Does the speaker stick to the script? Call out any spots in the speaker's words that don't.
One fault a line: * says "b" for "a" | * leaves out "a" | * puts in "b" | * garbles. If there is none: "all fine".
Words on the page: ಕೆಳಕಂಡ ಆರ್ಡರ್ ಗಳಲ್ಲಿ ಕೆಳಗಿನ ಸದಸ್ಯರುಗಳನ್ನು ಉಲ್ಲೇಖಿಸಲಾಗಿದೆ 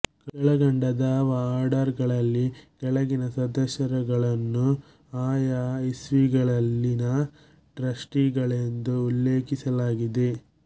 * puts in "ದಾವಾ"
* puts in "ಆಯಾ ಇಸ್ವಿಗಳಲ್ಲಿನ ಟ್ರಸ್ಟಿಗಳೆಂದು"